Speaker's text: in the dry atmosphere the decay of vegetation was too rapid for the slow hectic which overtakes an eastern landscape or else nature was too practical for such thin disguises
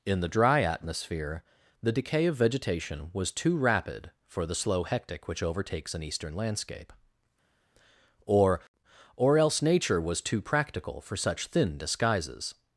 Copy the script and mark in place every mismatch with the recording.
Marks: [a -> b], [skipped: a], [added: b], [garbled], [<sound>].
in the dry atmosphere the decay of vegetation was too rapid for the slow hectic which overtakes an eastern landscape or [added: or] else nature was too practical for such thin disguises